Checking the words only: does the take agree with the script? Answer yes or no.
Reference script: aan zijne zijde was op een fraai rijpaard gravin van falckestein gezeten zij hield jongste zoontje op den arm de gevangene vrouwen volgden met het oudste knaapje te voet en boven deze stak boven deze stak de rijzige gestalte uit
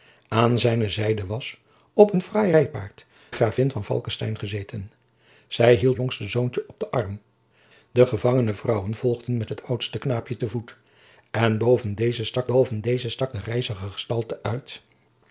yes